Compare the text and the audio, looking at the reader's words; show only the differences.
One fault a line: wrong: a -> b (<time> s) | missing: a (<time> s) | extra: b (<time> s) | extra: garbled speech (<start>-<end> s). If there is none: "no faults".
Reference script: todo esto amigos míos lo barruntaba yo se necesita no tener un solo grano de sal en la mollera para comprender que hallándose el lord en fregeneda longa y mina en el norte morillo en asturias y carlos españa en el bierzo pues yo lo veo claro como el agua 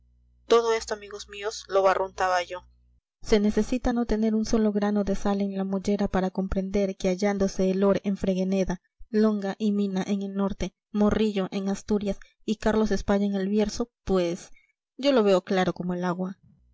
no faults